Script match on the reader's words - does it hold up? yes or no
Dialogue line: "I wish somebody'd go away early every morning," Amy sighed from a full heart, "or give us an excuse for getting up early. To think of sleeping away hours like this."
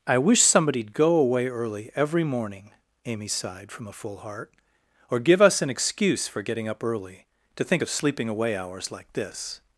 yes